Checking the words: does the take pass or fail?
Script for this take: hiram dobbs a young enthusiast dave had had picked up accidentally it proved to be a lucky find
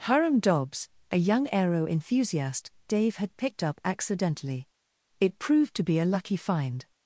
fail